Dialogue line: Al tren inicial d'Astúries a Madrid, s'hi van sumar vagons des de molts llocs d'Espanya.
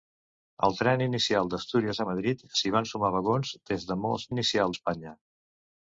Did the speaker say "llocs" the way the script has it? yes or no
no